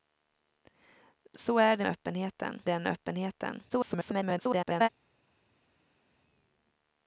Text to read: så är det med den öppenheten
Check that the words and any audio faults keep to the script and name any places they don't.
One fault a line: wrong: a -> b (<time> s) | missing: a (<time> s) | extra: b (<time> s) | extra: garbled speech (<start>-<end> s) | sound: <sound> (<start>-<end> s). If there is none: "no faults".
wrong: med -> öppenheten (1.8 s)
extra: garbled speech (3.7-4.9 s)